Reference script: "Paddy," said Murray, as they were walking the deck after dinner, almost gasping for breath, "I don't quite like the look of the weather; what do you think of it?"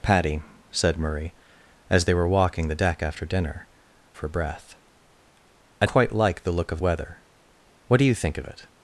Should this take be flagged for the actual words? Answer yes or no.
yes